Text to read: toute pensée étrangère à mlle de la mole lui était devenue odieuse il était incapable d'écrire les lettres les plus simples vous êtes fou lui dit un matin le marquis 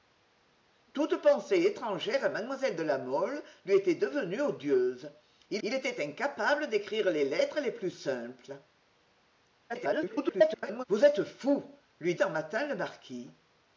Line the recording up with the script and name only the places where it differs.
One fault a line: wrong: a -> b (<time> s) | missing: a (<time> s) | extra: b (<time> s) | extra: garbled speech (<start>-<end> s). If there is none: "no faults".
extra: il (5.6 s)
extra: garbled speech (9.7-10.8 s)
missing: dit (12.1 s)